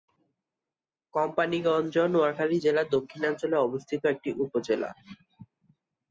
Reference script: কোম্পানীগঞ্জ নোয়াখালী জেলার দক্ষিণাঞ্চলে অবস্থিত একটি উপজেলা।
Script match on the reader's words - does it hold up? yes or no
yes